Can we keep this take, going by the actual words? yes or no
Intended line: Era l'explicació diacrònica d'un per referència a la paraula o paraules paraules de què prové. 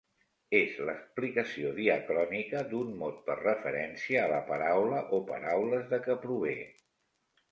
no